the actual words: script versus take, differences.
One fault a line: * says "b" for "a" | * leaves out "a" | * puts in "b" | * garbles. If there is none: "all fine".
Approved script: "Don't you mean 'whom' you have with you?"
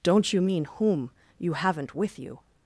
* says "haven't" for "have"